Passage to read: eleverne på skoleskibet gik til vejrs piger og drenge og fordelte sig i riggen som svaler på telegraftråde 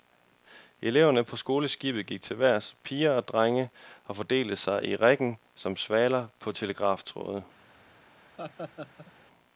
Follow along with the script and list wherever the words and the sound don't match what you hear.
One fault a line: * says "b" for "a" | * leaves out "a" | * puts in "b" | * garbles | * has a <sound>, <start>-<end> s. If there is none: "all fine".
* has a laugh, 8.4-9.1 s